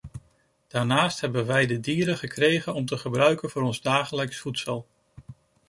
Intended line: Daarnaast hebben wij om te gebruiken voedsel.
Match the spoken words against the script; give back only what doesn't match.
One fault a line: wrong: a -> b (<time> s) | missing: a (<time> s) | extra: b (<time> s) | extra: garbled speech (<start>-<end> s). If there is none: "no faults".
extra: de dieren gekregen (1.6 s)
extra: voor ons dagelijks (3.4 s)